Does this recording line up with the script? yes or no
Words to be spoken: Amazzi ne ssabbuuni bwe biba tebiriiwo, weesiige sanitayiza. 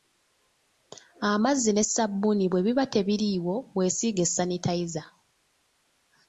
yes